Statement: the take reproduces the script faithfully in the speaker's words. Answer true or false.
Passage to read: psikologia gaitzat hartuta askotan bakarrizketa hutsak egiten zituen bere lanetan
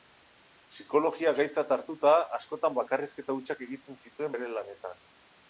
true